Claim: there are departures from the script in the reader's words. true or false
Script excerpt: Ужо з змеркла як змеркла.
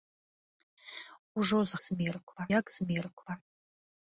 false